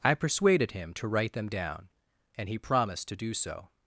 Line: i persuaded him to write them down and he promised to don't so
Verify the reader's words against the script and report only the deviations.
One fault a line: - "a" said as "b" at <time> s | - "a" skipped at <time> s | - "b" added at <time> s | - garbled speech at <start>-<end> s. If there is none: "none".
- "don't" said as "do" at 3.2 s